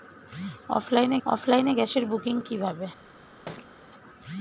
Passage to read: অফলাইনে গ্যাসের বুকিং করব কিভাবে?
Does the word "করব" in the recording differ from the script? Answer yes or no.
yes